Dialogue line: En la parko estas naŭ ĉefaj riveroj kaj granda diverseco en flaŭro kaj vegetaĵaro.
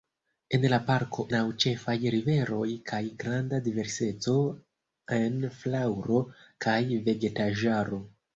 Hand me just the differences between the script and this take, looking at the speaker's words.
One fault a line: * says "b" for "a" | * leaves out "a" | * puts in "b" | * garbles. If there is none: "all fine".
* leaves out "estas"